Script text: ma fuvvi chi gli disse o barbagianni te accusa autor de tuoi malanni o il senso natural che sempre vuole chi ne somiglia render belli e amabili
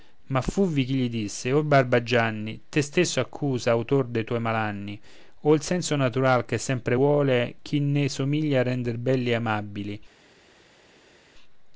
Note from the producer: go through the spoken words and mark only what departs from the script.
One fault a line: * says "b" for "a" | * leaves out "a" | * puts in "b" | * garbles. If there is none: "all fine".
* puts in "stesso"